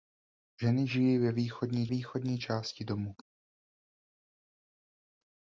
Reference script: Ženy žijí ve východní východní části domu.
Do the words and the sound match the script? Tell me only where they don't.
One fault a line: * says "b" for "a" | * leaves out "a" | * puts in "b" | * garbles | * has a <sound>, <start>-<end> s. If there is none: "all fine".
all fine